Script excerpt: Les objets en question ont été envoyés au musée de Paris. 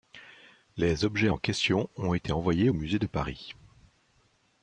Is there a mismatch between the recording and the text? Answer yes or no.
no